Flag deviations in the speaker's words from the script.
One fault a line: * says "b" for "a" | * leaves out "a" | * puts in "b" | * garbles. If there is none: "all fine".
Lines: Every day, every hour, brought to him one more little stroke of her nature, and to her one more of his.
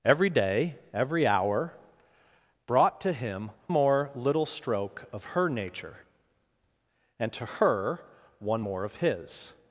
* leaves out "one"